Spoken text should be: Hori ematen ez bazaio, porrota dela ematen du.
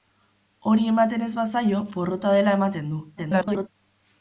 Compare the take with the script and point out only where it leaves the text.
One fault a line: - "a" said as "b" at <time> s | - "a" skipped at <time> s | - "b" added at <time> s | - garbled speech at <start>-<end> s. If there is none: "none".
- garbled speech at 3.2-3.7 s